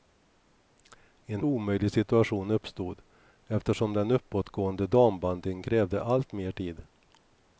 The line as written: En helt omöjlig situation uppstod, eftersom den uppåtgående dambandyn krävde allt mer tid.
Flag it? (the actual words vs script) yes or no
yes